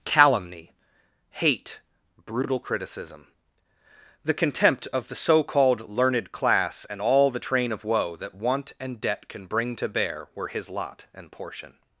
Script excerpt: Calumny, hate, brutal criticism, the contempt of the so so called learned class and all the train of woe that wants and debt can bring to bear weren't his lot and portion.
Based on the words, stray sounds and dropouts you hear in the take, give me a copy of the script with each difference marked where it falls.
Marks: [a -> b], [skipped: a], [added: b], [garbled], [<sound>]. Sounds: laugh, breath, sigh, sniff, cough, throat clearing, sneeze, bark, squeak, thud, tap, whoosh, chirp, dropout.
Calumny, hate, brutal criticism, the contempt of the so [skipped: so] called learned class and all the train of woe that [wants -> want] and debt can bring to bear [weren't -> were] his lot and portion.